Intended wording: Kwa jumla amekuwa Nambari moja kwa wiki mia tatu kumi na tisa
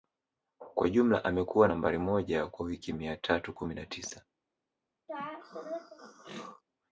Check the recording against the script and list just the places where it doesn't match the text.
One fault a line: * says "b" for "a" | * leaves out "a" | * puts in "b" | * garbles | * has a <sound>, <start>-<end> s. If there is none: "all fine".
* has a throat clearing, 5.1-6.6 s